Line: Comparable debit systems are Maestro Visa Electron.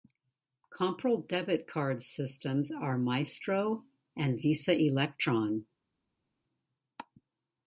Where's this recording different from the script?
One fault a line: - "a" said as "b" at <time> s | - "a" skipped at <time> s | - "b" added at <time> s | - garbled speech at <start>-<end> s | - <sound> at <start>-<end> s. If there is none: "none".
- "card" added at 1.7 s
- "and" added at 4.2 s